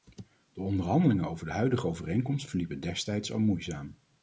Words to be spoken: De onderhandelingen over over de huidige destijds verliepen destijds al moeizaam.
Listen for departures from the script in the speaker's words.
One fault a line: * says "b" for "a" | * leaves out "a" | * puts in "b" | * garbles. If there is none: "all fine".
* leaves out "over"
* says "overeenkomst" for "destijds"